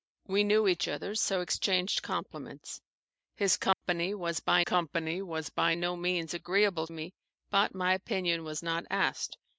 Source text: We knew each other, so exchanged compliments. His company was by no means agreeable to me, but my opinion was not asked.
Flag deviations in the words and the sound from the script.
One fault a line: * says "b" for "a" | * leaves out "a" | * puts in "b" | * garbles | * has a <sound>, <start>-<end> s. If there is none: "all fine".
* has a dropout, 3.7-3.8 s
* puts in "company was by"
* leaves out "to"